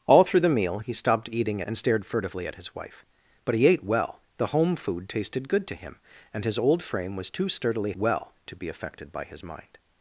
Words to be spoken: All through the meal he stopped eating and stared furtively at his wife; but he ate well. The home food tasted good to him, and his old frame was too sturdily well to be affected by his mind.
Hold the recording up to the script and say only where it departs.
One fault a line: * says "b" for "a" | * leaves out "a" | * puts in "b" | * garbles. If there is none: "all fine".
all fine